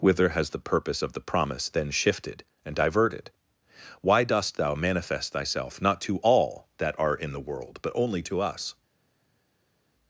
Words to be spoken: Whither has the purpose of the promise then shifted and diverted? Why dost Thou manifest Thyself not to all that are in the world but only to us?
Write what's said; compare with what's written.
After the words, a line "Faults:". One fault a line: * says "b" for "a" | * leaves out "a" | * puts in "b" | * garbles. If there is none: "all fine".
Whither has the purpose of the promise then shifted and diverted? Why dost Thou manifest Thyself not to all that are in the world but only to us?
Faults:
all fine